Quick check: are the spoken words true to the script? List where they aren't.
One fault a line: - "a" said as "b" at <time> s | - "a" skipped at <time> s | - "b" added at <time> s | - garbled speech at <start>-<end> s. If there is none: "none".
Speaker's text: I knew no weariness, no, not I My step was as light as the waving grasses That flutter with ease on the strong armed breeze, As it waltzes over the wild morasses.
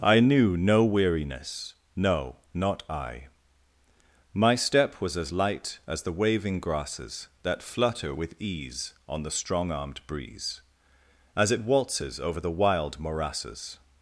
none